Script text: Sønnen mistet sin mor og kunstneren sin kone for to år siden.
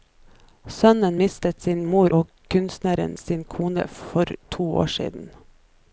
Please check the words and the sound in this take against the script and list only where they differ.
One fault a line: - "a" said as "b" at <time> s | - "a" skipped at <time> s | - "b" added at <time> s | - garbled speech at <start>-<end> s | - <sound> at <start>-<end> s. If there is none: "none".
none